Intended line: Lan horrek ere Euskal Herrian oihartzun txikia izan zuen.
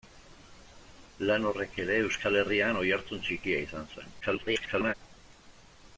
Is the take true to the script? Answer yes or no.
no